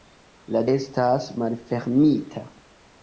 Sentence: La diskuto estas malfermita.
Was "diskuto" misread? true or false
true